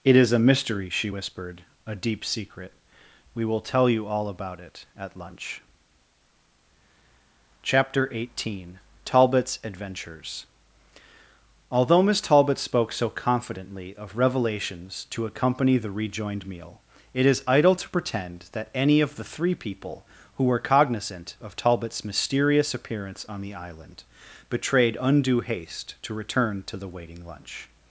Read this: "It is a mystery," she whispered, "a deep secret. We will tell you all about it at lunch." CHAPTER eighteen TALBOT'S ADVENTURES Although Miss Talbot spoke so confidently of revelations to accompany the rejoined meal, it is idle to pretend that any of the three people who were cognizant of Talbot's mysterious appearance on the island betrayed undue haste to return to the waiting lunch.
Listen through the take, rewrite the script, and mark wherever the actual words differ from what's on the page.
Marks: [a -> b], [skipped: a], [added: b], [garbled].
"It is a mystery," she whispered, "a deep secret. We will tell you all about it at lunch." CHAPTER eighteen TALBOT'S ADVENTURES Although Miss Talbot spoke so confidently of revelations to accompany the rejoined meal, it is idle to pretend that any of the three people who were cognizant of Talbot's mysterious appearance on the island betrayed undue haste to return to the waiting lunch.